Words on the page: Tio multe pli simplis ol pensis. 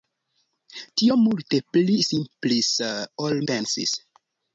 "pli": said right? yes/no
yes